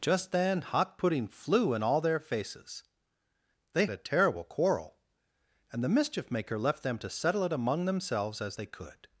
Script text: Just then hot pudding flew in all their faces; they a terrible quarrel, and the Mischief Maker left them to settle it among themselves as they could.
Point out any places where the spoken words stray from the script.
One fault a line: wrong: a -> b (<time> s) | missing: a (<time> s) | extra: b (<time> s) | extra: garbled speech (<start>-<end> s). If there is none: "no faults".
no faults